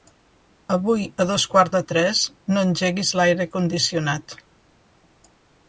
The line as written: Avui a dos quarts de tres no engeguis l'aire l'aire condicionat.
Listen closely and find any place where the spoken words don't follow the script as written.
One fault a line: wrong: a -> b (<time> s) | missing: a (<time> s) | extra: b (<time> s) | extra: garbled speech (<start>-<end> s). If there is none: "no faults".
missing: l'aire (3.5 s)